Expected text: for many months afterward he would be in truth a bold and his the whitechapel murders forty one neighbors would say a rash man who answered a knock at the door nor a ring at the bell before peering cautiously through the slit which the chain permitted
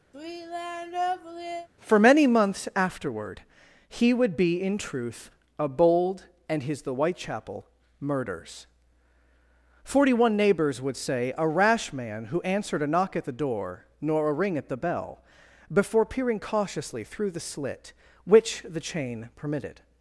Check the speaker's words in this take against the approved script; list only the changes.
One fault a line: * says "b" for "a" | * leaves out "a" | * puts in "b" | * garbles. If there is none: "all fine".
all fine